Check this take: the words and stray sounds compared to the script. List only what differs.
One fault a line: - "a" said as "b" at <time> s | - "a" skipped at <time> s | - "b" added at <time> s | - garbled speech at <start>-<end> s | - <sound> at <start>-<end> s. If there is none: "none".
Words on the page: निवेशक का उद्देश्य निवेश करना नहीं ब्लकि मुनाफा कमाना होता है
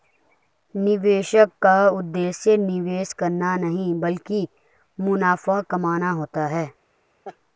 - laugh at 7.2-7.4 s